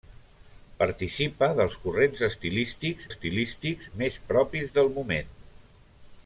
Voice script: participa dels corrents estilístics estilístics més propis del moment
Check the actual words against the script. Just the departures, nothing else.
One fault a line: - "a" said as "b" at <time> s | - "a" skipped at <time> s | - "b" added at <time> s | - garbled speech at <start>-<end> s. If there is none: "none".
none